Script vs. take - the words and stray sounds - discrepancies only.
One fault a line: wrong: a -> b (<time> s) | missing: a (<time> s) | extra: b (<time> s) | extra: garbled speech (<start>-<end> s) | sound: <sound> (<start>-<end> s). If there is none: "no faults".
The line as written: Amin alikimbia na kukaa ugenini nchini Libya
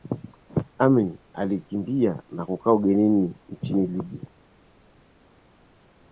no faults